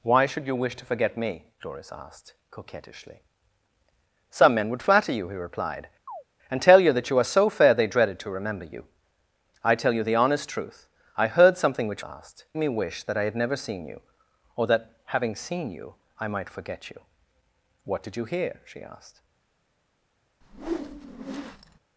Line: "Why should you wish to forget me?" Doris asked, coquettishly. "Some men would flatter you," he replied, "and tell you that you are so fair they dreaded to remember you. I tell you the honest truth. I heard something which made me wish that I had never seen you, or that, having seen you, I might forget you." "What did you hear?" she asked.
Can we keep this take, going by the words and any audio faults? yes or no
no